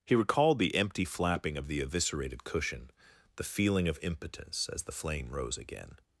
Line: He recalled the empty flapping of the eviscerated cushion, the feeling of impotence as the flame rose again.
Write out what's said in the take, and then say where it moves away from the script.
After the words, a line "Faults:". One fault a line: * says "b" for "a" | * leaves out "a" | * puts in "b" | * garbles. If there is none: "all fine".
He recalled the empty flapping of the eviscerated cushion, the feeling of impotence as the flame rose again.
Faults:
all fine